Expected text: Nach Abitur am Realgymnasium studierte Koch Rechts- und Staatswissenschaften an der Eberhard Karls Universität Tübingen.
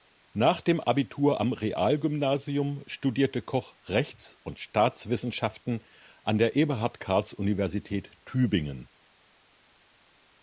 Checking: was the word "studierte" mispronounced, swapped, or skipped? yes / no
no